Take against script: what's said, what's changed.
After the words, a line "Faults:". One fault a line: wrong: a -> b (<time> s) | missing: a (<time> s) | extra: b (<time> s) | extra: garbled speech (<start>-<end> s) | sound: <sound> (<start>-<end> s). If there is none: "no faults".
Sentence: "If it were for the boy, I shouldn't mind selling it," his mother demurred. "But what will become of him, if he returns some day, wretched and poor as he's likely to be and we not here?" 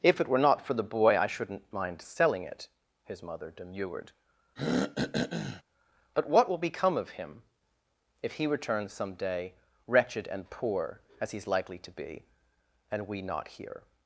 "If it were not for the boy, I shouldn't mind selling it," his mother demurred. "But what will become of him, if he returns some day, wretched and poor as he's likely to be and we not here?"
Faults:
extra: not (0.4 s)
sound: throat clearing (4.6-5.6 s)